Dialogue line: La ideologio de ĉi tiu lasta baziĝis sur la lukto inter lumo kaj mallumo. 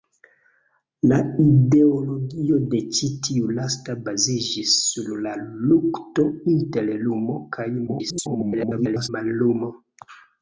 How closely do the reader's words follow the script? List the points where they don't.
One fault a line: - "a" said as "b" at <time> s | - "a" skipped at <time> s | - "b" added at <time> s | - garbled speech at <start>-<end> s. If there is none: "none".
- garbled speech at 7.9-9.1 s